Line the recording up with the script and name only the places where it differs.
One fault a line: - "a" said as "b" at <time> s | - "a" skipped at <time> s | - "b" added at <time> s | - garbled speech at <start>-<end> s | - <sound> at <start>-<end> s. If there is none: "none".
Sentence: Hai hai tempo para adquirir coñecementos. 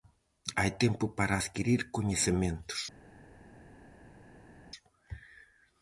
- "hai" skipped at 0.7 s